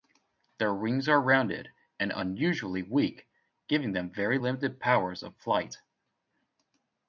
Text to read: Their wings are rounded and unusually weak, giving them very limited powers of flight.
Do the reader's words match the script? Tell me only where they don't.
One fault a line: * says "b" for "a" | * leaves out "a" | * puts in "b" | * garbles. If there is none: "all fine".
all fine